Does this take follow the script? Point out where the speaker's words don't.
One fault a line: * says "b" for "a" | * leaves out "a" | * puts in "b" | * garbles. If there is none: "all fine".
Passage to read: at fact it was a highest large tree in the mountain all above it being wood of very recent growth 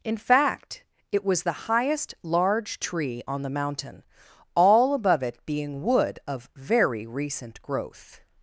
* says "in" for "at"
* says "the" for "a"
* says "on" for "in"